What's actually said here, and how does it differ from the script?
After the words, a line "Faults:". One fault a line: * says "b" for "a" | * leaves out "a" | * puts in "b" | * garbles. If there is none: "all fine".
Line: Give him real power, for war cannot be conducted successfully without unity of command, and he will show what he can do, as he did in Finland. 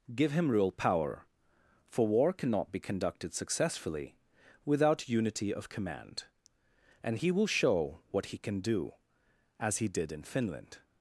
Give him real power, for war cannot be conducted successfully without unity of command, and he will show what he can do, as he did in Finland.
Faults:
all fine